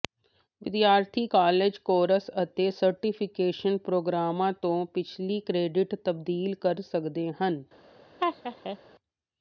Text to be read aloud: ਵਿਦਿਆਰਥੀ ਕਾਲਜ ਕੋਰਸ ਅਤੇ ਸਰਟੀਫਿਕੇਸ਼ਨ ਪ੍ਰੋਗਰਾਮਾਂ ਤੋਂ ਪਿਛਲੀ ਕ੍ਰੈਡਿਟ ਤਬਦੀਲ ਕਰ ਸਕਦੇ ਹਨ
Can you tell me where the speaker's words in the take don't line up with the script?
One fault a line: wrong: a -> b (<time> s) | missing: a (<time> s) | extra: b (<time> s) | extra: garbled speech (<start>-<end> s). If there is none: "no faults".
no faults